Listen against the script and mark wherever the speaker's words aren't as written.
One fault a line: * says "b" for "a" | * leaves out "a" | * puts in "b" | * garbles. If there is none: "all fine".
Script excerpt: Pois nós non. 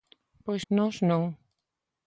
all fine